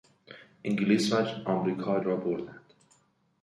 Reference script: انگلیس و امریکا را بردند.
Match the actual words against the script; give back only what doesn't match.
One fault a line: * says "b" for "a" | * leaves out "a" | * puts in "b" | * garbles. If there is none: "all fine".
all fine